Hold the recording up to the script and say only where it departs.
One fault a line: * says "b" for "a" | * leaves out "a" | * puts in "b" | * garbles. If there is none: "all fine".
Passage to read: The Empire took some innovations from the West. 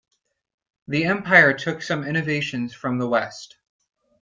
all fine